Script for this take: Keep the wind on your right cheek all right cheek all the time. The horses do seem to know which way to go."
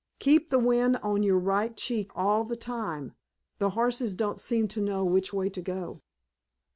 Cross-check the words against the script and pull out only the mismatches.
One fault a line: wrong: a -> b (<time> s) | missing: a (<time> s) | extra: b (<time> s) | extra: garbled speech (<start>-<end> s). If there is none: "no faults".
missing: right cheek all (2.4 s)
wrong: do -> don't (4.2 s)